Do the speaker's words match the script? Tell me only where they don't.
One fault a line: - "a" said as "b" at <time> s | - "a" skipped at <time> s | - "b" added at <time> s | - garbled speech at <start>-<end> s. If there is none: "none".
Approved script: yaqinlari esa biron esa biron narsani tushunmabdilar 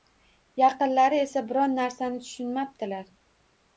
- "esa biron" skipped at 1.8 s